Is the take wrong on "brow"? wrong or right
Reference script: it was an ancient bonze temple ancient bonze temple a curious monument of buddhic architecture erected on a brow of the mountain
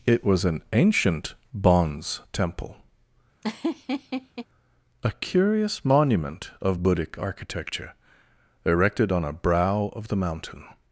right